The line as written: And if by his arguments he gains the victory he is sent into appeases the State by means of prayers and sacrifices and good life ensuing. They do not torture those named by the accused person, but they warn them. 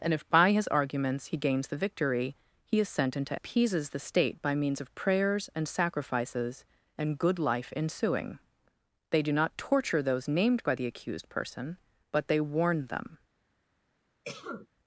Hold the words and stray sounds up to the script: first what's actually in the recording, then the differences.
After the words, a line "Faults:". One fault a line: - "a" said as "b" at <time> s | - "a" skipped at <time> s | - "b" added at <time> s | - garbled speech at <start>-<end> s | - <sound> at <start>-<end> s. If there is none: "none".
And if by his arguments he gains the victory he is sent into appeases the State by means of prayers and sacrifices and good life ensuing. They do not torture those named by the accused person, but they warn them.
Faults:
- cough at 14.2-14.7 s